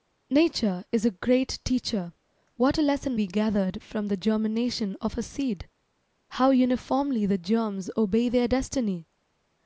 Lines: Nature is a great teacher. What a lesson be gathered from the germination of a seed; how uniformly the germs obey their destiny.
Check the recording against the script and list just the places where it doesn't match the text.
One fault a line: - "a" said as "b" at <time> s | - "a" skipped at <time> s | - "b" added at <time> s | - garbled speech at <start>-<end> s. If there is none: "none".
none